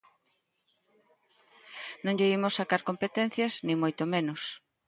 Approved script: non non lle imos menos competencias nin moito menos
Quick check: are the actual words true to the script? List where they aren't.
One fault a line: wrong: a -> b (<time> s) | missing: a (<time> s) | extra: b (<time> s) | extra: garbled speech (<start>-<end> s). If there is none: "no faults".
missing: non (2.2 s)
wrong: menos -> sacar (2.6 s)